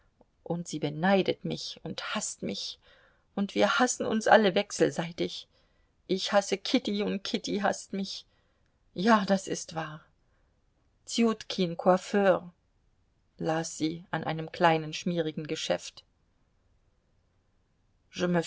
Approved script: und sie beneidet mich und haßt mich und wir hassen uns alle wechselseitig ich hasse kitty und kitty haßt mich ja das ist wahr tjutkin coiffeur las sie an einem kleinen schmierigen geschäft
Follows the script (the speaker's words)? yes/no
yes